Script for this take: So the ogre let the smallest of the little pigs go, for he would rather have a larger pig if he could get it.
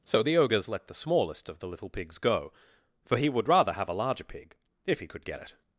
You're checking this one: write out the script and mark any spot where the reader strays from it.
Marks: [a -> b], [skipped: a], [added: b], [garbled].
So the [ogre -> ogres] let the smallest of the little pigs go, for he would rather have a larger pig if he could get it.